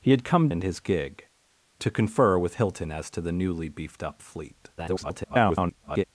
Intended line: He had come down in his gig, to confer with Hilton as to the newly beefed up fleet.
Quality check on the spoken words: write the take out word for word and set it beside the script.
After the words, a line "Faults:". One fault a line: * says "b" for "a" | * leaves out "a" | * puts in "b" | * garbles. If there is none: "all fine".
He had come in his gig, to confer with Hilton as to the newly beefed up fleet. [garbled]
Faults:
* leaves out "down"
* garbles